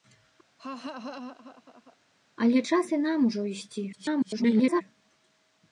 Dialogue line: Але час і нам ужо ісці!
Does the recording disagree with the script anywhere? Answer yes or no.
yes